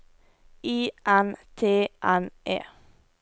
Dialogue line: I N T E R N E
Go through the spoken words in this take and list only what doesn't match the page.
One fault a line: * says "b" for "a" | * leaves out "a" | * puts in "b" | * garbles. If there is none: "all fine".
* leaves out "E R"